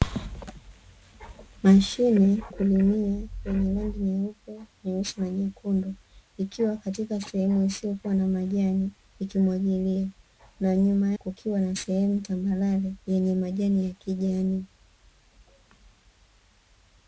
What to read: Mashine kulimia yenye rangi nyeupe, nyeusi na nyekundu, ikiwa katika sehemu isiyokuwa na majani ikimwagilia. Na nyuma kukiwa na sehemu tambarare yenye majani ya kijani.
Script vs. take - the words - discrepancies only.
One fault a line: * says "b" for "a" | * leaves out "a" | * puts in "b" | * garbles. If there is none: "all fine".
all fine